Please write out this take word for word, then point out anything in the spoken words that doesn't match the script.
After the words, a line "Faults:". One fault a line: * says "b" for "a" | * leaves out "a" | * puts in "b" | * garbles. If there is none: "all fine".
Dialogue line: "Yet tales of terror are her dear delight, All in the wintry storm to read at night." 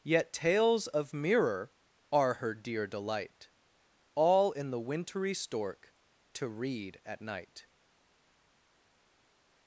"Yet tales of mirror are her dear delight, All in the wintry stork to read at night."
Faults:
* says "mirror" for "terror"
* says "stork" for "storm"